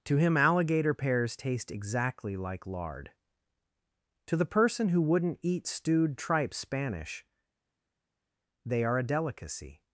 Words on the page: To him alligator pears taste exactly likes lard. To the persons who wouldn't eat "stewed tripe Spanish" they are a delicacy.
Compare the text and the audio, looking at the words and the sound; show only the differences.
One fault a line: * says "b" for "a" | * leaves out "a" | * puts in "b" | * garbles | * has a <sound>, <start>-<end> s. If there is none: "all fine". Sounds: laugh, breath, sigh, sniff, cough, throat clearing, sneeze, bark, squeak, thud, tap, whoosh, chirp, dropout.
* says "like" for "likes"
* says "person" for "persons"